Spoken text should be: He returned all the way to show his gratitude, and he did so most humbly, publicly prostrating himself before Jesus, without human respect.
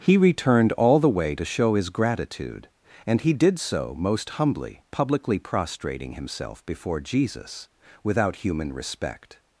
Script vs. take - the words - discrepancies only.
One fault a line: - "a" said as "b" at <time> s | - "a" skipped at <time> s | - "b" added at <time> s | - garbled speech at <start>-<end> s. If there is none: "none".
none